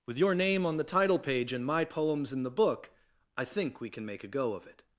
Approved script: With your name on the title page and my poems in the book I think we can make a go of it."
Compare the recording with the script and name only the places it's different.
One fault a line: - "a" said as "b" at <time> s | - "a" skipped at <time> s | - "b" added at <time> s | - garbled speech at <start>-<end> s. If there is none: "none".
none